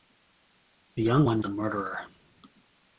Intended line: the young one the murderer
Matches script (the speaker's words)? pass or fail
pass